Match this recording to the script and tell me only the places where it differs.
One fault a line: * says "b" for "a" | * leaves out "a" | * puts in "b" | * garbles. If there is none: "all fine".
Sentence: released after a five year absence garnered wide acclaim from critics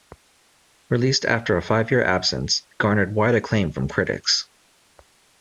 all fine